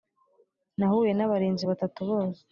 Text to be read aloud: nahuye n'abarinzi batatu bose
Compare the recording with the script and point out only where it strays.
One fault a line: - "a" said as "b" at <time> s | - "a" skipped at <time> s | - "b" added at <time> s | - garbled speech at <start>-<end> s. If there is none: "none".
none